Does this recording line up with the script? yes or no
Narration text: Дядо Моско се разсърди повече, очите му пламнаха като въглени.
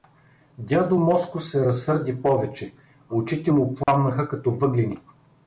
yes